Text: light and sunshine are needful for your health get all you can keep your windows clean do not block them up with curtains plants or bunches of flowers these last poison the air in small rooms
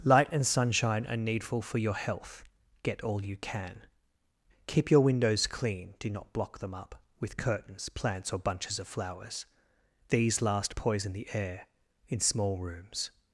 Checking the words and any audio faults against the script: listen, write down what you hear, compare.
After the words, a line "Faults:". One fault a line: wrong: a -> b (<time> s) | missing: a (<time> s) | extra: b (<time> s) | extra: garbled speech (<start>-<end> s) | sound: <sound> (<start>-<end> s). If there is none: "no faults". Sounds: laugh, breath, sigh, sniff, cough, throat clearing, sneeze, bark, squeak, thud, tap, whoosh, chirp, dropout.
light and sunshine are needful for your health get all you can keep your windows clean do not block them up with curtains plants or bunches of flowers these last poison the air in small rooms
Faults:
no faults